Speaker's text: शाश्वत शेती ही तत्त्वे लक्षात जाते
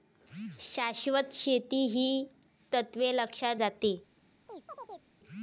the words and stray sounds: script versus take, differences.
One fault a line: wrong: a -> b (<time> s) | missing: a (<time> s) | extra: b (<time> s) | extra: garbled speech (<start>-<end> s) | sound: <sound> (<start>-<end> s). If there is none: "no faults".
sound: chirp (4.5-5.1 s)